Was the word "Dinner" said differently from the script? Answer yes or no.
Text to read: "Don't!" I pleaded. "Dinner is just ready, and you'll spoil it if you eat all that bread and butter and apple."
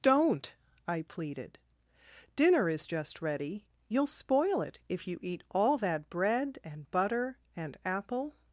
no